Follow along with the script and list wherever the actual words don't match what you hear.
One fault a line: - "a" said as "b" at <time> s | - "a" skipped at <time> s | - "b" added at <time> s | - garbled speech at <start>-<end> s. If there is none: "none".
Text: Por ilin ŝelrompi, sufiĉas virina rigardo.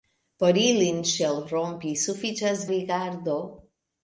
- "virina" skipped at 2.6 s